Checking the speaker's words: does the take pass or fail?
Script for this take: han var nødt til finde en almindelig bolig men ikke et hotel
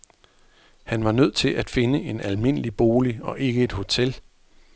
fail